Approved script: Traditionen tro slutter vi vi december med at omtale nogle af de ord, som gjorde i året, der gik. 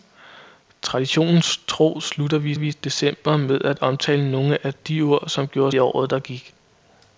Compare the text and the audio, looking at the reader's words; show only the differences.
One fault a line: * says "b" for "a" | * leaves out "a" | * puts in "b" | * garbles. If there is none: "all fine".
all fine